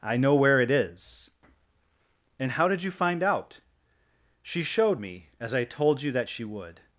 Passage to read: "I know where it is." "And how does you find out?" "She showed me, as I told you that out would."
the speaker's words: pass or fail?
fail